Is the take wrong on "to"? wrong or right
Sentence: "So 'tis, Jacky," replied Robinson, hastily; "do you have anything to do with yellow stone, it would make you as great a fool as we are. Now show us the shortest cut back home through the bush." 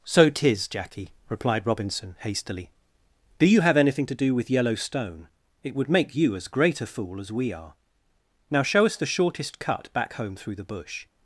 right